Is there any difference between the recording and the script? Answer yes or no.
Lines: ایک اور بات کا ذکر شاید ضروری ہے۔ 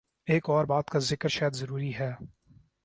no